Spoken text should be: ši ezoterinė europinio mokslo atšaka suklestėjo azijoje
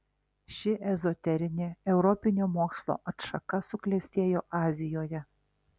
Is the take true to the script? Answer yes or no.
yes